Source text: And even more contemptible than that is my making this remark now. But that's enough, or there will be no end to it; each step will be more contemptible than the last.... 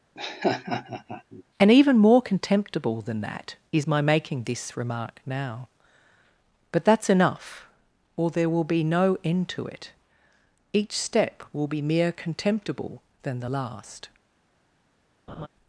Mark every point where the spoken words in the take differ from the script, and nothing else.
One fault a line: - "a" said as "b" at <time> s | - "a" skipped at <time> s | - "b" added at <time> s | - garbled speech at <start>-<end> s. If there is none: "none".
- "more" said as "mere" at 11.8 s